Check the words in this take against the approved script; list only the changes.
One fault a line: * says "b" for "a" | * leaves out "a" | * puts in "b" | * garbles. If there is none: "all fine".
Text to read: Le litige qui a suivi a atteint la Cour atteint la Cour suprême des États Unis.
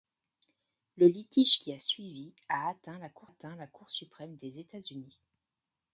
all fine